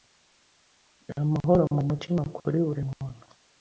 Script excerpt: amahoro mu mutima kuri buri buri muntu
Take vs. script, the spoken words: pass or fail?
fail